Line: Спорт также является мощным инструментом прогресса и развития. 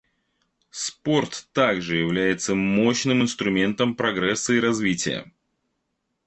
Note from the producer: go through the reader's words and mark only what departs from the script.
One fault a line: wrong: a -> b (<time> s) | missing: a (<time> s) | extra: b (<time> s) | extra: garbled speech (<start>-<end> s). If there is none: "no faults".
no faults